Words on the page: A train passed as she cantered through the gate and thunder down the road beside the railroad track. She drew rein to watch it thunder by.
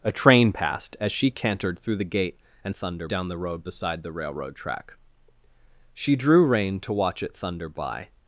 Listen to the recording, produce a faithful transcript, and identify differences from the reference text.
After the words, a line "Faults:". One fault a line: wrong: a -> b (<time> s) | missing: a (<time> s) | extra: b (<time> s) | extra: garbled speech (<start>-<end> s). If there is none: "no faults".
A train passed as she cantered through the gate and thunder down the road beside the railroad track. She drew rein to watch it thunder by.
Faults:
no faults